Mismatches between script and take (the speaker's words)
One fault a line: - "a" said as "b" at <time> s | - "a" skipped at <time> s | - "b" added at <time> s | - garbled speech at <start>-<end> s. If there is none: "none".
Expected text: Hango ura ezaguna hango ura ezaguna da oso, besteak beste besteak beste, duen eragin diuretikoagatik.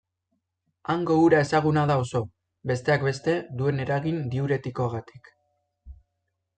- "hango ura ezaguna" skipped at 1.8 s
- "besteak beste" skipped at 3.4 s